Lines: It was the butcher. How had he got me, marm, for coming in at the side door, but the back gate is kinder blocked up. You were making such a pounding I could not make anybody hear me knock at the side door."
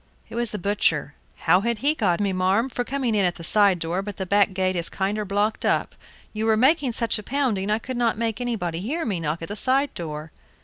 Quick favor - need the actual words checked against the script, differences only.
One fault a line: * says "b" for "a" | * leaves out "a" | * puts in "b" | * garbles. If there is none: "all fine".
all fine